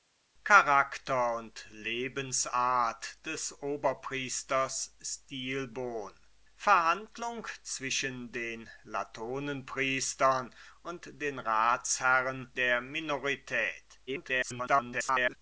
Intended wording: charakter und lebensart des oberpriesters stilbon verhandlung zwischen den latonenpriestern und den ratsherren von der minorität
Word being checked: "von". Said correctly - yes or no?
no